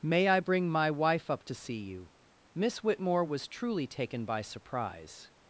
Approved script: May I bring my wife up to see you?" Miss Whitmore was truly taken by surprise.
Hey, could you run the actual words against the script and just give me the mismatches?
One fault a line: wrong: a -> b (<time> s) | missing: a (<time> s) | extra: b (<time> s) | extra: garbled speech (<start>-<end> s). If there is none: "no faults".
no faults